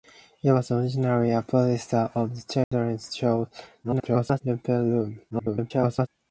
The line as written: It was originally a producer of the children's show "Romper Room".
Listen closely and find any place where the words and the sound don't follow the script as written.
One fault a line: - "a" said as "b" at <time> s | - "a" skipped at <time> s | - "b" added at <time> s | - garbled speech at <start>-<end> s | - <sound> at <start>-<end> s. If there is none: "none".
- dropout at 2.6-2.7 s
- garbled speech at 3.8-4.4 s
- garbled speech at 5.3-6.1 s